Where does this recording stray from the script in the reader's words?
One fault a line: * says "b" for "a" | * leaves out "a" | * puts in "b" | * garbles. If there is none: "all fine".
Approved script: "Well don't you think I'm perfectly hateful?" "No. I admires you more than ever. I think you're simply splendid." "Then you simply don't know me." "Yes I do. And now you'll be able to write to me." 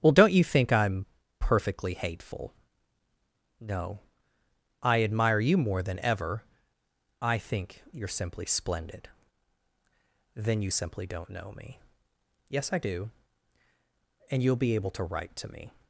* says "admire" for "admires"
* leaves out "now"